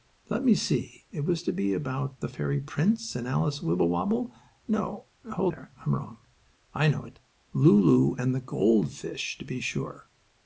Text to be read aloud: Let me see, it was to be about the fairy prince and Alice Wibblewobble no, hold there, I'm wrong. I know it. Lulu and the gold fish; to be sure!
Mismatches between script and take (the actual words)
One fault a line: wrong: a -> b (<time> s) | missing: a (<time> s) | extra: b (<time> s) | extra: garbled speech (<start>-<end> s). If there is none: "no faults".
no faults